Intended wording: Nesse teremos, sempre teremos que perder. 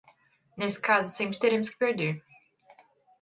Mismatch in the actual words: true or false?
true